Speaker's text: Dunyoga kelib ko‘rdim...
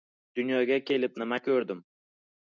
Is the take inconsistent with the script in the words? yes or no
yes